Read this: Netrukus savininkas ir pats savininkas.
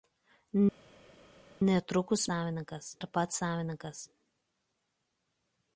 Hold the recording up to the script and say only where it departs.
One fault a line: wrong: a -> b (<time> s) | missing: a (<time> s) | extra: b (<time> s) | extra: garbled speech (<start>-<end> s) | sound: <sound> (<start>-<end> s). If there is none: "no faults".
no faults